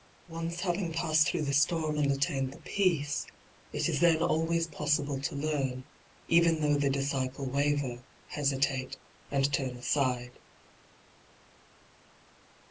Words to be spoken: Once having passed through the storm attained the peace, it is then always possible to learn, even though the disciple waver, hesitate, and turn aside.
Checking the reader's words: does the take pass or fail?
fail